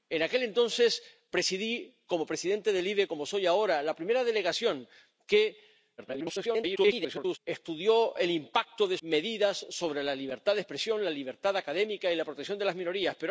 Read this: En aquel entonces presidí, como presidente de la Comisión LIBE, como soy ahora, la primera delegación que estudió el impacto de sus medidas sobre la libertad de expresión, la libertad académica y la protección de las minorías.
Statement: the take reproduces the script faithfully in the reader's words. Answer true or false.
false